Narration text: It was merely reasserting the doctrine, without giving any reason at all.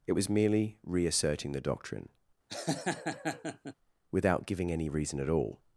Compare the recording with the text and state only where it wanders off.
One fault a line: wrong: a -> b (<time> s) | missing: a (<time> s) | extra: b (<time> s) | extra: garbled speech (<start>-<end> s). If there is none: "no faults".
no faults